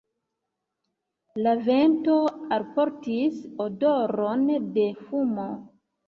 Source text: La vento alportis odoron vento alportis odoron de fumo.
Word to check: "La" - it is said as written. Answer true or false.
true